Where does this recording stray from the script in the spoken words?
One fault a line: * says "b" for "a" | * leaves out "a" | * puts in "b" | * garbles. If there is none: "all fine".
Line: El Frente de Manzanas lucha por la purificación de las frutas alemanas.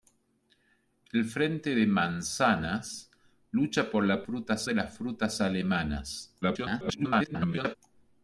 * says "frutas" for "purificación"
* garbles